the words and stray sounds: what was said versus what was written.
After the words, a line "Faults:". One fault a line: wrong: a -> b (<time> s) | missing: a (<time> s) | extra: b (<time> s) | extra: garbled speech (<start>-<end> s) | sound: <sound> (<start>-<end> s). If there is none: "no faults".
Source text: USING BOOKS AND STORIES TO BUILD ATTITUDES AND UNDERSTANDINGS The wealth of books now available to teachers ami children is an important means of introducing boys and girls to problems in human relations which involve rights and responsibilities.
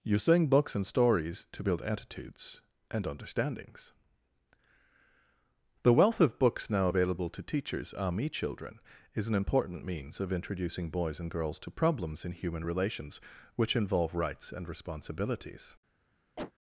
USING BOOKS AND STORIES TO BUILD ATTITUDES AND UNDERSTANDINGS The wealth of books now available to teachers ami children is an important means of introducing boys and girls to problems in human relations which involve rights and responsibilities.
Faults:
sound: cough (16.4-16.5 s)